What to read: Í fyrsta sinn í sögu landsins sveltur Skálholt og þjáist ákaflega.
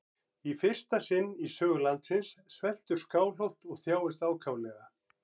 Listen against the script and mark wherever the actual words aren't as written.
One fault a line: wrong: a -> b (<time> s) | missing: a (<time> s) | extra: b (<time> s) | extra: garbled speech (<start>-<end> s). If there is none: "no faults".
no faults